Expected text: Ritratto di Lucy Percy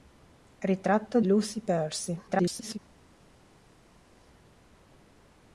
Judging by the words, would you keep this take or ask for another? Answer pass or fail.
fail